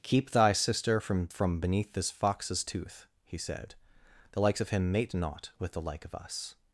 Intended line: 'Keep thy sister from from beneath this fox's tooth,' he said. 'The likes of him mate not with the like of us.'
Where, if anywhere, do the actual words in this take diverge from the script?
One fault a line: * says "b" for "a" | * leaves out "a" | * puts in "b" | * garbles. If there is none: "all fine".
all fine